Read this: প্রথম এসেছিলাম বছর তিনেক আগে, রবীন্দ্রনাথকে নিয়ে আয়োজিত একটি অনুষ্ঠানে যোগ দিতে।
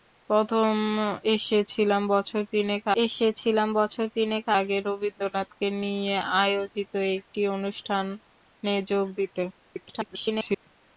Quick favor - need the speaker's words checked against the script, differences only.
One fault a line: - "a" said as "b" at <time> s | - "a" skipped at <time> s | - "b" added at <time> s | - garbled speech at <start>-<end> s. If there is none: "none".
- "এসেছিলাম বছর তিনেক" added at 3.0 s
- garbled speech at 9.5-10.7 s